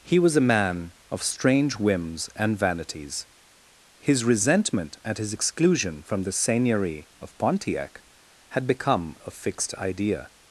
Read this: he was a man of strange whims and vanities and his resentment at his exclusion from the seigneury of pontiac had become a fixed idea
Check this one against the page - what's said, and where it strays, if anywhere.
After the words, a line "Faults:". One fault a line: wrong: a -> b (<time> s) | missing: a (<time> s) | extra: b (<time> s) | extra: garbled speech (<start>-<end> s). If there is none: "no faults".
he was a man of strange whims and vanities his resentment at his exclusion from the seigneury of pontiac had become a fixed idea
Faults:
missing: and (3.3 s)